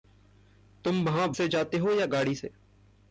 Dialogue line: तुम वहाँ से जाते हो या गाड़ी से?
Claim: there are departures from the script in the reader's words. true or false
false